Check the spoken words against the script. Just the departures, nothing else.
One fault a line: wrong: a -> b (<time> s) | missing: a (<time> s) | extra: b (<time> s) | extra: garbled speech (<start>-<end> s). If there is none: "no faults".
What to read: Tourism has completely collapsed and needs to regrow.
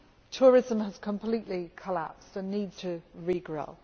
no faults